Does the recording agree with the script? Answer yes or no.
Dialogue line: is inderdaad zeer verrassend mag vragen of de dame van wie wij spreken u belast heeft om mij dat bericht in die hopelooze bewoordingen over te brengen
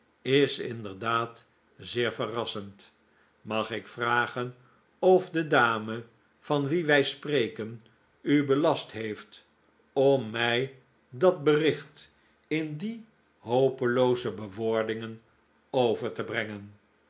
no